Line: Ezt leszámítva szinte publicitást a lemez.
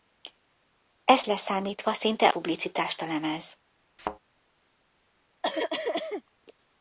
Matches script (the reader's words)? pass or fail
pass